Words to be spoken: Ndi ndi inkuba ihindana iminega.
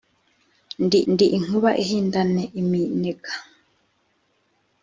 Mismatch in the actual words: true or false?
false